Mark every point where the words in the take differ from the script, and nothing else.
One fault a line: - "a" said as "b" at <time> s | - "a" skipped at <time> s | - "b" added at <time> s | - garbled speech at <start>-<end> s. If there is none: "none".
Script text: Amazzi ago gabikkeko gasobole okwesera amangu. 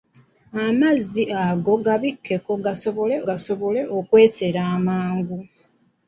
- "gasobole" added at 3.3 s